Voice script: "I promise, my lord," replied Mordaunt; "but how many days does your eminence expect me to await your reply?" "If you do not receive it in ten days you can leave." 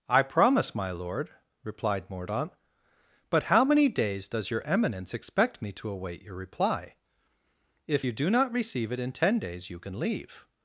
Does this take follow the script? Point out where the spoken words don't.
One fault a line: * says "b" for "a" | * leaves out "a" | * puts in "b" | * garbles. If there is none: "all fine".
all fine